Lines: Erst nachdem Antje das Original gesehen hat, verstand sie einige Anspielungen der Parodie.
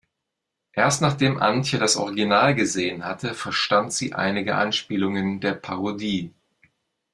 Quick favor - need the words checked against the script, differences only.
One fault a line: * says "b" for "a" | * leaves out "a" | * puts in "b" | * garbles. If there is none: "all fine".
* says "hatte" for "hat"